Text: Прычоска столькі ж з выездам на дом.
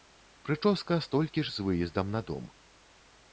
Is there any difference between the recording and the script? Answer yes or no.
no